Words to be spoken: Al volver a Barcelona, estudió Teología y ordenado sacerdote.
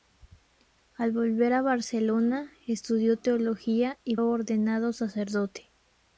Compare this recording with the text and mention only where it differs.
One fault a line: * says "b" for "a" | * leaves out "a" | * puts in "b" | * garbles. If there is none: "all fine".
all fine